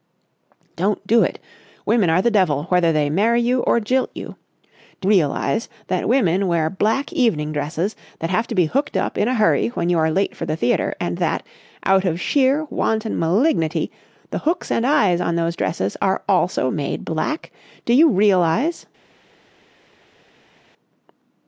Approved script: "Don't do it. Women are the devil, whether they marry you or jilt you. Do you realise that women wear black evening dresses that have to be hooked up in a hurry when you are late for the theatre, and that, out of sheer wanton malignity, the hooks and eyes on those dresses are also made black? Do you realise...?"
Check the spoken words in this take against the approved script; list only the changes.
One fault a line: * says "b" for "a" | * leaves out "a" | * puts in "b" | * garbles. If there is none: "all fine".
* leaves out "you"